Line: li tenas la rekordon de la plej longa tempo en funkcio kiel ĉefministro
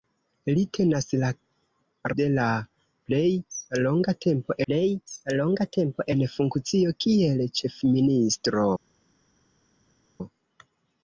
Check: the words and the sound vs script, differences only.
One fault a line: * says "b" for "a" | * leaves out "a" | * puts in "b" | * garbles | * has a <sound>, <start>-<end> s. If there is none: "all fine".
* leaves out "rekordon"
* puts in "plej longa tempo"